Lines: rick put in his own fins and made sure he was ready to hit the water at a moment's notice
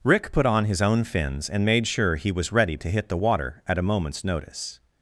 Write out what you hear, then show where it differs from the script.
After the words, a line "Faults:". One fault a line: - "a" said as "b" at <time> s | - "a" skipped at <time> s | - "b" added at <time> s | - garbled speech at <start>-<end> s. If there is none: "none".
rick put on his own fins and made sure he was ready to hit the water at a moment's notice
Faults:
- "in" said as "on" at 0.4 s